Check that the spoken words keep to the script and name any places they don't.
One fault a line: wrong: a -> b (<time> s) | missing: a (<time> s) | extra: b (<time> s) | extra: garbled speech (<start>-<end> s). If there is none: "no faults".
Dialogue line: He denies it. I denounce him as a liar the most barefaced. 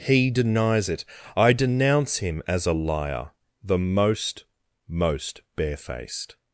extra: most (4.9 s)